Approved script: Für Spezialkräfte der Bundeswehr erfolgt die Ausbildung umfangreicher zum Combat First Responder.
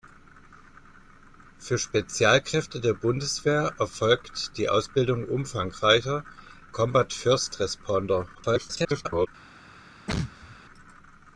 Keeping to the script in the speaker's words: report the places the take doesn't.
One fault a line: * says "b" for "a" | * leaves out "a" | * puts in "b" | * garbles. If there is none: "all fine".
* leaves out "zum"
* garbles